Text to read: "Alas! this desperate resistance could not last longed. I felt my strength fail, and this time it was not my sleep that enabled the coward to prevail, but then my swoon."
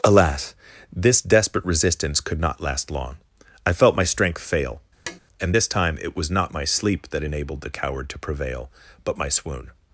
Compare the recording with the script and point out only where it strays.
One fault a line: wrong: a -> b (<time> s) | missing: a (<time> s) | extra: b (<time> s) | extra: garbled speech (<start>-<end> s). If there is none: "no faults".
wrong: longed -> long (2.9 s)
missing: then (9.2 s)